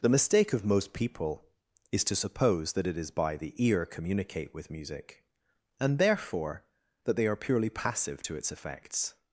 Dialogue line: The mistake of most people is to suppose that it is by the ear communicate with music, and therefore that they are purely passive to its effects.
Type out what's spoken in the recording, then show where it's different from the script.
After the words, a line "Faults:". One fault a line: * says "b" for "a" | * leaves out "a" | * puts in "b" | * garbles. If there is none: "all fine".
The mistake of most people is to suppose that it is by the ear communicate with music, and therefore that they are purely passive to its effects.
Faults:
all fine